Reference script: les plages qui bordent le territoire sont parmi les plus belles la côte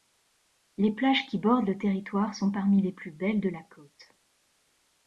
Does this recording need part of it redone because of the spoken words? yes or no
yes